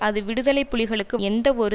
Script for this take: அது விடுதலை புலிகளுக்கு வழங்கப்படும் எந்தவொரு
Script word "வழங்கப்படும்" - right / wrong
wrong